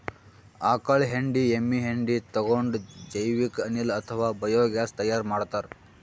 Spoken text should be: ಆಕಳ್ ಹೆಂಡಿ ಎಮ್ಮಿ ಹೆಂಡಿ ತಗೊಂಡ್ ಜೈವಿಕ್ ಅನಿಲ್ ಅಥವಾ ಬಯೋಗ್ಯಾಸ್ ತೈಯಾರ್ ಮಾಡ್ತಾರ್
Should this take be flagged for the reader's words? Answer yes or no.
no